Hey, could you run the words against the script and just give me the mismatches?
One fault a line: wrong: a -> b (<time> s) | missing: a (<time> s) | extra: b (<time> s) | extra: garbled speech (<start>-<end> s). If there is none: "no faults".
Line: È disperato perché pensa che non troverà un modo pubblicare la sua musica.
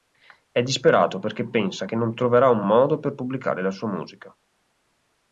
extra: per (3.0 s)